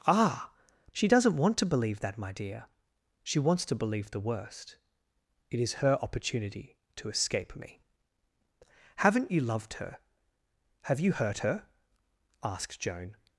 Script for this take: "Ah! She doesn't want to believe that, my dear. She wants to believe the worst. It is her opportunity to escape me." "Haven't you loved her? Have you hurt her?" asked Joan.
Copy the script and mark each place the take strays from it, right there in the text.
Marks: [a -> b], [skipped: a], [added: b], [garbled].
"Ah! She doesn't want to believe that, my dear. She wants to believe the worst. It is her opportunity to escape me." "Haven't you loved her? Have you hurt her?" asked Joan.